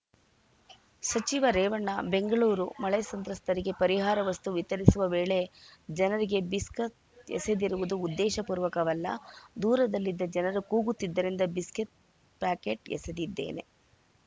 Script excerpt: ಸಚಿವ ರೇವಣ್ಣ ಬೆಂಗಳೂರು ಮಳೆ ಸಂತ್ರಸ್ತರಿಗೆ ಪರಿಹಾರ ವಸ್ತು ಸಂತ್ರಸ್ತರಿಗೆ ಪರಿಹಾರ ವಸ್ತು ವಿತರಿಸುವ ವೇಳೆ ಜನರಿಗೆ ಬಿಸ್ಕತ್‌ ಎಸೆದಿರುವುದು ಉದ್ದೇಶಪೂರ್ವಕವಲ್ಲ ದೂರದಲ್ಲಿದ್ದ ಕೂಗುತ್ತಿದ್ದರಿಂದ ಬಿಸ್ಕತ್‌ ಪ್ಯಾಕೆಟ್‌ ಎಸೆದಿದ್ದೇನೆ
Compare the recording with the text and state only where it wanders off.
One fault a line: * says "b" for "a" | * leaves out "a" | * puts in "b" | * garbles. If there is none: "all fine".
* leaves out "ಸಂತ್ರಸ್ತರಿಗೆ ಪರಿಹಾರ ವಸ್ತು"
* puts in "ಜನರು"